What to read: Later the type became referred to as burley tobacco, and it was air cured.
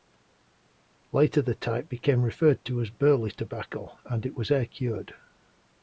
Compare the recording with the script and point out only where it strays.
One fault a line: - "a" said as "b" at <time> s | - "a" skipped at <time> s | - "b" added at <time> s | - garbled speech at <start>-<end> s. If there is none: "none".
none